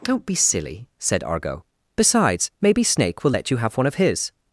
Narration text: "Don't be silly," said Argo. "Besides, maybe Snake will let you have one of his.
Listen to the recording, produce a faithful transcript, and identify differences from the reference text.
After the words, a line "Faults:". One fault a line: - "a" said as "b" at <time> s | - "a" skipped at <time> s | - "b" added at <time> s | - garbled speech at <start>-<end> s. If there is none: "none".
"Don't be silly," said Argo. "Besides, maybe Snake will let you have one of his.
Faults:
none